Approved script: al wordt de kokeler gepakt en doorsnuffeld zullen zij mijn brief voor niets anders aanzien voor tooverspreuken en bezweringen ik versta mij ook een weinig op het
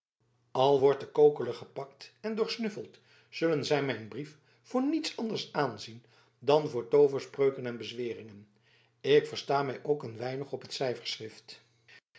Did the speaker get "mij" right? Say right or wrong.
right